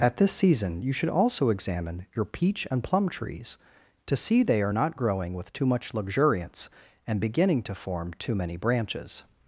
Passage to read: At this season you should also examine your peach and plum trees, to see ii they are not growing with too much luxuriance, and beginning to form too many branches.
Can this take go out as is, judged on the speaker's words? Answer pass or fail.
fail